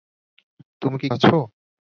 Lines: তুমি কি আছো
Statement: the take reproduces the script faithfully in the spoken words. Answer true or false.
true